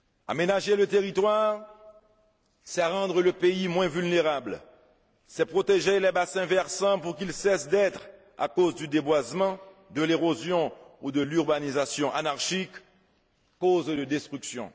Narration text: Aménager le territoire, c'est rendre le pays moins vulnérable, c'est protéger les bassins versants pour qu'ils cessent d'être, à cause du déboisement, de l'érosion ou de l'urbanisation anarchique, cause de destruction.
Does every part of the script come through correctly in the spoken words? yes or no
yes